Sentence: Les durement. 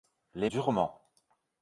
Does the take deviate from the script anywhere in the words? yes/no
no